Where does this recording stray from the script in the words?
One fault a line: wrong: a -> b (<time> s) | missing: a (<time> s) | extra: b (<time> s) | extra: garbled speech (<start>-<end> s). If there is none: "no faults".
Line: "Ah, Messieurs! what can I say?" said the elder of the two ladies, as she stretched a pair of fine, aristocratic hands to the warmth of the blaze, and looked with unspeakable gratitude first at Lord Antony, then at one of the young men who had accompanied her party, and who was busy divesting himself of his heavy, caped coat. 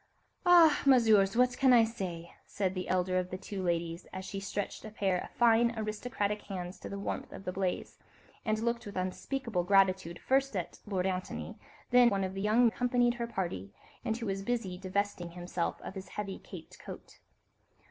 missing: at (12.1 s)
missing: men who had (12.7 s)